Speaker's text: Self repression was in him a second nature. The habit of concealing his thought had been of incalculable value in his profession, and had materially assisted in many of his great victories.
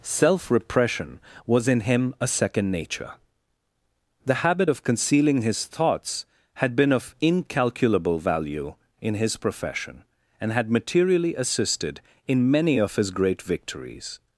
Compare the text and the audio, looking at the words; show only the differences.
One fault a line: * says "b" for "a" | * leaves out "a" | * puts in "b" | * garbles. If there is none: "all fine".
* says "thoughts" for "thought"